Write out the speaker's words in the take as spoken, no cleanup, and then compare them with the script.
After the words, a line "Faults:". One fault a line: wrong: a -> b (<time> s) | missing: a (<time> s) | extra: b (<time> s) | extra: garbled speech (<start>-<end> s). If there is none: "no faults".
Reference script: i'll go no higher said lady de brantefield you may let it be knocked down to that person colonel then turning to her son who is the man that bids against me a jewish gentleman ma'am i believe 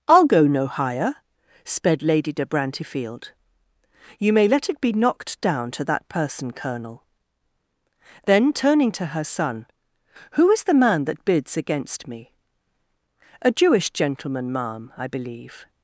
i'll go no higher sped lady de brantefield you may let it be knocked down to that person colonel then turning to her son who is the man that bids against me a jewish gentleman ma'am i believe
Faults:
wrong: said -> sped (1.6 s)